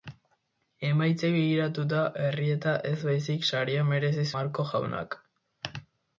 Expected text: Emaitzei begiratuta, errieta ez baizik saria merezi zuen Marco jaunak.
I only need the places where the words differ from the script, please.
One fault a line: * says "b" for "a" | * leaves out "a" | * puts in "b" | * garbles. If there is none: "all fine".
* leaves out "zuen"